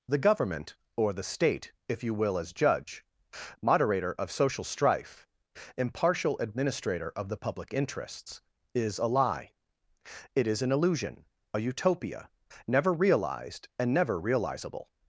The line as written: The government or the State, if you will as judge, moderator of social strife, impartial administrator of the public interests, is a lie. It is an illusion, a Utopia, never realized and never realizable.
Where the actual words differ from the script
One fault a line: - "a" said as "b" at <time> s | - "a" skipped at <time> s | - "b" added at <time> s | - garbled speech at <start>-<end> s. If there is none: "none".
none